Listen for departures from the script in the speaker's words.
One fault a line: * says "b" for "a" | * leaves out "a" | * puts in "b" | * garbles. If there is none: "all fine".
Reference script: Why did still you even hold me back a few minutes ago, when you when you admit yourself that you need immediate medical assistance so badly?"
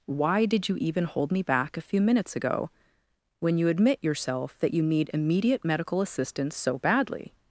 * leaves out "still"
* leaves out "when you"